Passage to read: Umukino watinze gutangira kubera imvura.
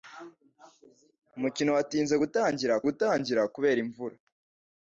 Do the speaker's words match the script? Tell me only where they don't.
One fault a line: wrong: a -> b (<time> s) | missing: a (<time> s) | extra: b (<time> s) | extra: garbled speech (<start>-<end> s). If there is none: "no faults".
extra: gutangira (2.9 s)